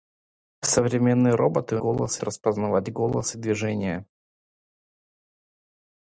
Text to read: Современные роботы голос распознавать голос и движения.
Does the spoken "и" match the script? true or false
true